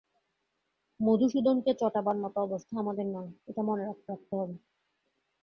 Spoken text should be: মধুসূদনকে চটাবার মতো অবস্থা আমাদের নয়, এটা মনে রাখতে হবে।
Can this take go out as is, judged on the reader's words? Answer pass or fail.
fail